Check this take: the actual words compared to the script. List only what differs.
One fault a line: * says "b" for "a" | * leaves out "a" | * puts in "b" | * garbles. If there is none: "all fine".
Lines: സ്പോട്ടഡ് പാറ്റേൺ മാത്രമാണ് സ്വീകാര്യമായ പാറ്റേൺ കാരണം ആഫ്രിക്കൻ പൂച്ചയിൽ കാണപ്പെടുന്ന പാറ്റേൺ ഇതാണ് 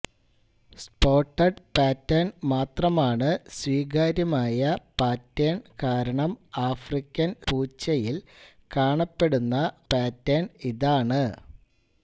all fine